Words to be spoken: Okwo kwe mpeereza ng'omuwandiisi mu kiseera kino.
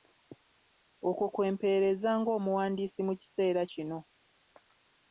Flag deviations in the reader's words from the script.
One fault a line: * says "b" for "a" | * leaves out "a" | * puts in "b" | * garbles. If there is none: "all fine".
all fine